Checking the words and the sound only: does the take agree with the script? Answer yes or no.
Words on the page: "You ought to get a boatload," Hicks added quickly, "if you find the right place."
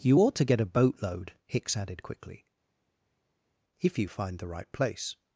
yes